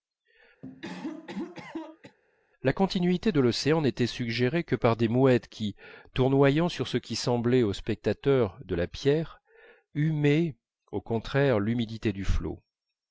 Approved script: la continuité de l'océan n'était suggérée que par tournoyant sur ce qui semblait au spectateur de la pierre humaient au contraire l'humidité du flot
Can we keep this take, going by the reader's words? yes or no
no